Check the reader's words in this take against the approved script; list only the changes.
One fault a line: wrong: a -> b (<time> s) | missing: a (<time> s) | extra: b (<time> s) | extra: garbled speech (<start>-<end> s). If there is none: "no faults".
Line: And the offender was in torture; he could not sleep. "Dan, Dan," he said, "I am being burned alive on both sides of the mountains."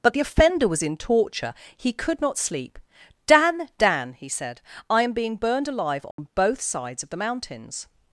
wrong: And -> But (0.0 s)